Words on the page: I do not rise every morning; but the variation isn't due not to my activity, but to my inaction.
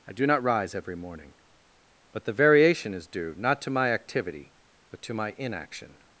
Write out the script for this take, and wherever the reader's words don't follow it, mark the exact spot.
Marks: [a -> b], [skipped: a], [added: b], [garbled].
I do not rise every morning; but the variation [isn't -> is] due not to my activity, but to my inaction.